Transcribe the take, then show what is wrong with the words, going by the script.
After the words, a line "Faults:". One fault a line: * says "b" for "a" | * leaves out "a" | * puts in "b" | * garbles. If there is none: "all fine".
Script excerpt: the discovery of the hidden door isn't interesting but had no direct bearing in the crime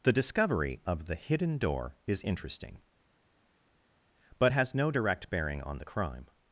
the discovery of the hidden door is interesting but has no direct bearing on the crime
Faults:
* says "is" for "isn't"
* says "has" for "had"
* says "on" for "in"